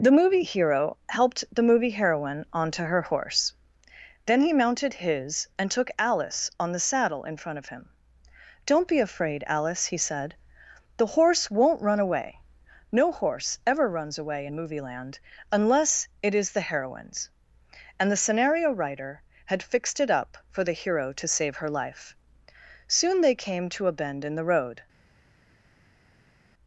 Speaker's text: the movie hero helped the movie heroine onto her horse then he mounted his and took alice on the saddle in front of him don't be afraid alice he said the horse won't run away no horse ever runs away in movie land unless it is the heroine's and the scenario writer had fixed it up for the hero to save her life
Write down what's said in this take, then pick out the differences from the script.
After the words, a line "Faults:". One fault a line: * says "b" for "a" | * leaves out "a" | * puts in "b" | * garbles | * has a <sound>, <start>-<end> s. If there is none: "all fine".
the movie hero helped the movie heroine onto her horse then he mounted his and took alice on the saddle in front of him don't be afraid alice he said the horse won't run away no horse ever runs away in movie land unless it is the heroine's and the scenario writer had fixed it up for the hero to save her life soon they came to a bend in the road
Faults:
* puts in "soon they came to a bend in the road"